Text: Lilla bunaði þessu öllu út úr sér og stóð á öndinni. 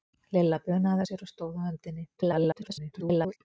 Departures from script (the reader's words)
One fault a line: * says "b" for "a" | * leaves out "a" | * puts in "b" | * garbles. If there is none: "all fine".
* leaves out "þessu öllu út"
* garbles